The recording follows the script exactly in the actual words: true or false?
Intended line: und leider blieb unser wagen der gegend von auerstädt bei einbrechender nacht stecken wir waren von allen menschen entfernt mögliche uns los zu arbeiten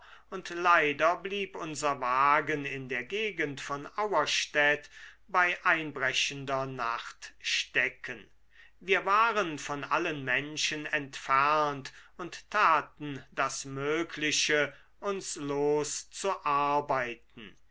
false